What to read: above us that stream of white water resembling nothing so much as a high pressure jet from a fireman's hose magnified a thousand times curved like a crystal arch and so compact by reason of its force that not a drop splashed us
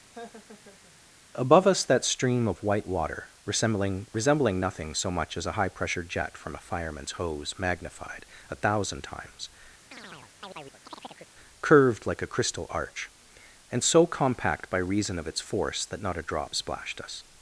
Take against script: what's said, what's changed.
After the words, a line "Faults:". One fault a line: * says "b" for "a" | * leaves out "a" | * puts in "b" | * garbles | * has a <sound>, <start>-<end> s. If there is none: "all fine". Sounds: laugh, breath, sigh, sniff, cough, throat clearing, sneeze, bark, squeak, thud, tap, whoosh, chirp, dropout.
above us that stream of white water resembling resembling nothing so much as a high pressure jet from a fireman's hose magnified a thousand times curved like a crystal arch and so compact by reason of its force that not a drop splashed us
Faults:
* has a laugh, 0.1-1.0 s
* puts in "resembling"
* has a chirp, 9.9-11.3 s